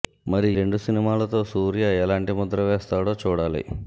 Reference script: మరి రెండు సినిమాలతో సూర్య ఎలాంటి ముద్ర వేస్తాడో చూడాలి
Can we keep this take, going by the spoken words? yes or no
yes